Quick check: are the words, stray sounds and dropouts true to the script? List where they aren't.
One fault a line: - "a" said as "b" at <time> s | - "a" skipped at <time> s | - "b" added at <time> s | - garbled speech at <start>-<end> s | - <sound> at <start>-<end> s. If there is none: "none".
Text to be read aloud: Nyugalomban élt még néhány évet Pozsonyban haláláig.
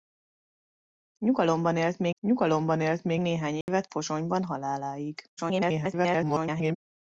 - "nyugalomban élt még" added at 2.2 s
- dropout at 3.6-3.7 s
- garbled speech at 5.4-6.8 s